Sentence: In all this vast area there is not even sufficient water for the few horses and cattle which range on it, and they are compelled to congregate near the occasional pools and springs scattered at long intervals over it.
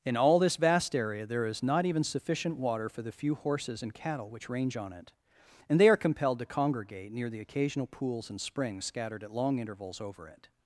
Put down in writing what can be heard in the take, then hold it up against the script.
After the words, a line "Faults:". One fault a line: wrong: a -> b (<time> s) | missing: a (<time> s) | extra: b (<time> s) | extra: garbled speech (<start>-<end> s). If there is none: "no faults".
In all this vast area there is not even sufficient water for the few horses and cattle which range on it, and they are compelled to congregate near the occasional pools and springs scattered at long intervals over it.
Faults:
no faults